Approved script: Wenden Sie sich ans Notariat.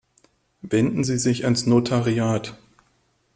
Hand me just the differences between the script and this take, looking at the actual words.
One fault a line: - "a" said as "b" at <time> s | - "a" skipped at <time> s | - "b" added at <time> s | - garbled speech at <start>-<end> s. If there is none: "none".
none